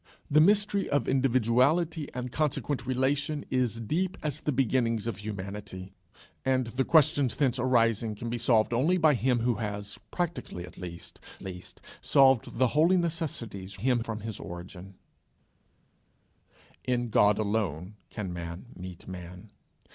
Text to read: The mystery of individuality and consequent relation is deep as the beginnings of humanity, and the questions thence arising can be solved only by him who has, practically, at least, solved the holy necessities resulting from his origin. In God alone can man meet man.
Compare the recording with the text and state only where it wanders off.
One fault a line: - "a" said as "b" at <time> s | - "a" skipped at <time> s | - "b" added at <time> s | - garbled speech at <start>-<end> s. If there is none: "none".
- "least" added at 11.4 s
- "resulting" said as "him" at 13.7 s